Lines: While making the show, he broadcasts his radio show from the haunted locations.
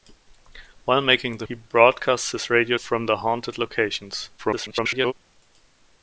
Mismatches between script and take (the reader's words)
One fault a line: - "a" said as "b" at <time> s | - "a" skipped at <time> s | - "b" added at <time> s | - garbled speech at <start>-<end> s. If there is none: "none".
- "show" skipped at 1.4 s
- "show" skipped at 2.8 s
- garbled speech at 4.4-5.1 s